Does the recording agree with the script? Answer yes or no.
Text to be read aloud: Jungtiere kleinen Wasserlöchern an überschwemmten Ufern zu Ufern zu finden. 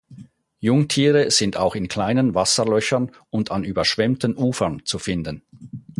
no